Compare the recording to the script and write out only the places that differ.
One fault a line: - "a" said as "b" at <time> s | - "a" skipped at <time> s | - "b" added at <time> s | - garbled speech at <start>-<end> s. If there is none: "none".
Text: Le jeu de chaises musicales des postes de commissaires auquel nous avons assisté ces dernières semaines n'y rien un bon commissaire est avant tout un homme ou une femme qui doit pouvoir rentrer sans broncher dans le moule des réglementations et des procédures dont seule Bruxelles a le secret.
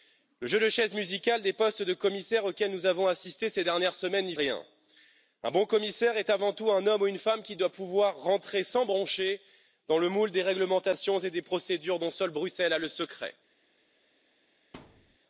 none